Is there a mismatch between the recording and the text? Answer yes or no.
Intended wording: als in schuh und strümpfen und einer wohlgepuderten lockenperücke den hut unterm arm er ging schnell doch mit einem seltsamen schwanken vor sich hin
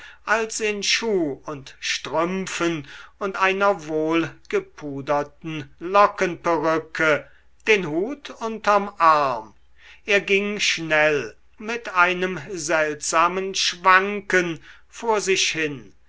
yes